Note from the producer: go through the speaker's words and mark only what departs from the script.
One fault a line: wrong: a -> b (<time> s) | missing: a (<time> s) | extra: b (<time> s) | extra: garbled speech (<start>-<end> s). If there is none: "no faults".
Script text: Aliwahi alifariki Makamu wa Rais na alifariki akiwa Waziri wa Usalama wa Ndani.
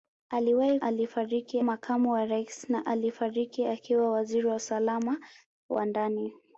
no faults